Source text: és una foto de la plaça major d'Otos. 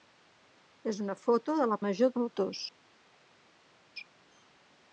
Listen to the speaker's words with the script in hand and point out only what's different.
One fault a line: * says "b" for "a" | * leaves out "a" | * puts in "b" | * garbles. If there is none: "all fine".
* leaves out "plaça"